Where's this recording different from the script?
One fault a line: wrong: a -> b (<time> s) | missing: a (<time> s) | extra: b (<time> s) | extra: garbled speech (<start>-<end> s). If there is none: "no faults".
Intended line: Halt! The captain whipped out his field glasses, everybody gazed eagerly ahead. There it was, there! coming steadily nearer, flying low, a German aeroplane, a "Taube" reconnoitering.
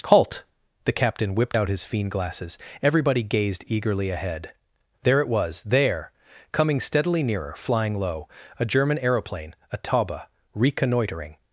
wrong: field -> fiend (1.8 s)